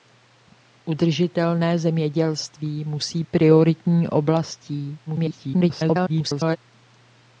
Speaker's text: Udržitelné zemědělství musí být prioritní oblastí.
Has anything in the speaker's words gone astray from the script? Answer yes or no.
yes